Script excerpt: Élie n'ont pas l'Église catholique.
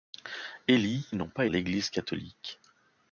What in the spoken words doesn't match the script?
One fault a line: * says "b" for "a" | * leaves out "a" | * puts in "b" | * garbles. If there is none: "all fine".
all fine